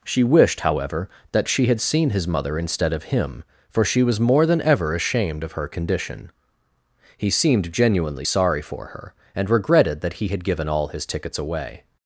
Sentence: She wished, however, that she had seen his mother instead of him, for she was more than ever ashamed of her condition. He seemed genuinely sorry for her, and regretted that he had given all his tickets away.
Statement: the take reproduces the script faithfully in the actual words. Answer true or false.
true